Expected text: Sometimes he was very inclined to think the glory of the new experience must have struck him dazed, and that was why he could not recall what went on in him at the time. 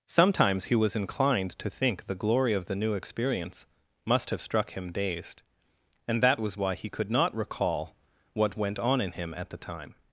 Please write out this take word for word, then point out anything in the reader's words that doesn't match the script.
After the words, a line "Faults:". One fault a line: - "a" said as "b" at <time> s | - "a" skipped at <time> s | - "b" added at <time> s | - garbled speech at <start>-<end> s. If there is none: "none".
Sometimes he was inclined to think the glory of the new experience must have struck him dazed, and that was why he could not recall what went on in him at the time.
Faults:
- "very" skipped at 0.9 s